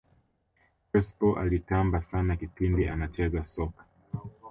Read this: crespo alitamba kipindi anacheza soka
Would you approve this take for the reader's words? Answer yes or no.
no